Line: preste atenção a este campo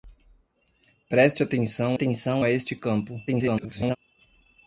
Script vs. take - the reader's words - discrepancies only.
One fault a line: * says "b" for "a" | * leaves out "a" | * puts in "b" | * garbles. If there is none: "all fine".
* puts in "atenção"
* garbles